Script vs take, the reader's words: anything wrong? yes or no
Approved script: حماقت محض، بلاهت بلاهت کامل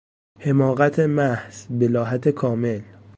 yes